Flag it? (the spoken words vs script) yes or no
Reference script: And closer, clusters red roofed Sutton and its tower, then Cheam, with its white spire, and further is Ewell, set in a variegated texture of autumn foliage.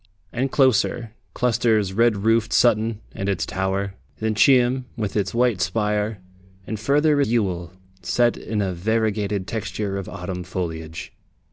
yes